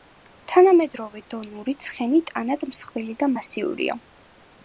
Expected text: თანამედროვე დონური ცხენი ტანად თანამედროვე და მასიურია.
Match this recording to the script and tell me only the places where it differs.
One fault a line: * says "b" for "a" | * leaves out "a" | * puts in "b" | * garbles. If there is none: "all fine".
* says "მსხვილი" for "თანამედროვე"